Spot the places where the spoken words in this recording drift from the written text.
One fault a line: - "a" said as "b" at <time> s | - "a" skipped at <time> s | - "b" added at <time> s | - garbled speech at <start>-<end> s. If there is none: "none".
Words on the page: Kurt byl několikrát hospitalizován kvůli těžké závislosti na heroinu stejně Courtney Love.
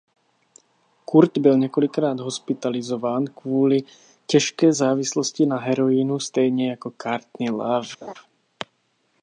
- "jako" added at 6.7 s